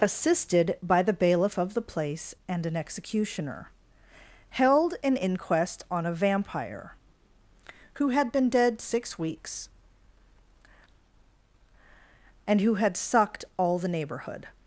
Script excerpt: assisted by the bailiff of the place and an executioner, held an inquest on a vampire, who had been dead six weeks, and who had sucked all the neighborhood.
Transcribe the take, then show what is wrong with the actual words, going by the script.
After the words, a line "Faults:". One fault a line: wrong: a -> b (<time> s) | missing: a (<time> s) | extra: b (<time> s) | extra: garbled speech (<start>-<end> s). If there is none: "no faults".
assisted by the bailiff of the place and an executioner, held an inquest on a vampire, who had been dead six weeks, and who had sucked all the neighborhood.
Faults:
no faults